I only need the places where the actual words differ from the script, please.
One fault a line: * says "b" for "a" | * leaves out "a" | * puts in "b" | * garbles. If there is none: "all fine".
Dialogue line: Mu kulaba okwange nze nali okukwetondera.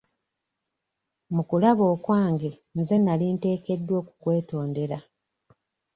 * puts in "nteekeddwa"